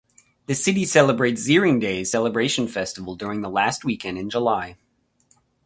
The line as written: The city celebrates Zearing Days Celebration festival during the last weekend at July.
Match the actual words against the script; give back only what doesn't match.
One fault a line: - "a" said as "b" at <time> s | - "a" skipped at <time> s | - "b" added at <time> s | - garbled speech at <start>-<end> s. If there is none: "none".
- "at" said as "in" at 4.2 s